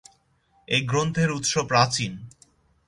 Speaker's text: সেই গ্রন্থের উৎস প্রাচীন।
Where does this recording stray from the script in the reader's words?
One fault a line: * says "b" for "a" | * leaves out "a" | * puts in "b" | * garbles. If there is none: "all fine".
* says "এই" for "সেই"